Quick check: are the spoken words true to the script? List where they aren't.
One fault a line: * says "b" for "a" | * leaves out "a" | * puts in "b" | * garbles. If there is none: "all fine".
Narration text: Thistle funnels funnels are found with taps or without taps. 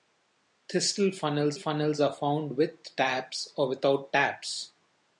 all fine